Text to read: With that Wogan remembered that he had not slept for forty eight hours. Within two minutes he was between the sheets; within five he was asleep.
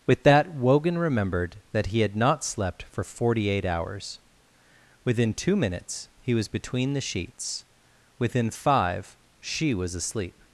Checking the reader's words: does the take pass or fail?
fail